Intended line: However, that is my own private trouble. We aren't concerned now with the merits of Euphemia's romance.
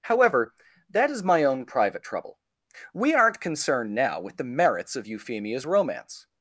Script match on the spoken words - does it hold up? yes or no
yes